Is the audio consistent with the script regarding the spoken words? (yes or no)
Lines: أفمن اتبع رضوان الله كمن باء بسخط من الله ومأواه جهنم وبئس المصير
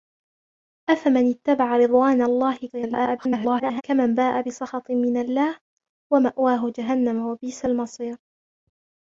no